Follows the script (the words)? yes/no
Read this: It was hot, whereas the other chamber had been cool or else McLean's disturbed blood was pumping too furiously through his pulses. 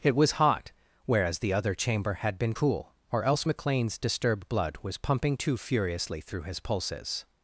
yes